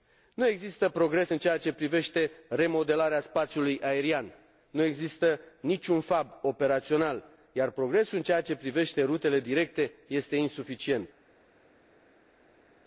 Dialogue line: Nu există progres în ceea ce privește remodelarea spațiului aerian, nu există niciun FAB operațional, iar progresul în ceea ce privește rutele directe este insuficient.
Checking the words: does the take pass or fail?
pass